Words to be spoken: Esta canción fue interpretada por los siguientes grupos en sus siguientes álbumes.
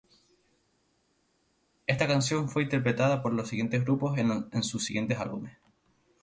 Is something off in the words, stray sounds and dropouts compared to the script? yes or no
no